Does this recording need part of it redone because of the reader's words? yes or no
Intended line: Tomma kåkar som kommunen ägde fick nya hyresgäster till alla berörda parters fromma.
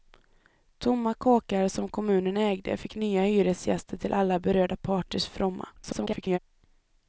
yes